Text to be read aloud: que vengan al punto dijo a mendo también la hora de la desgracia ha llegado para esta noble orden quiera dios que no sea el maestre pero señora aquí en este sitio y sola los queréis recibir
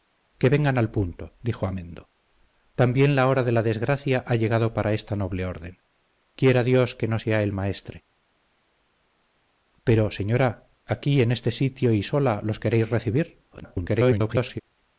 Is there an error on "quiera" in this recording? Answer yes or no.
no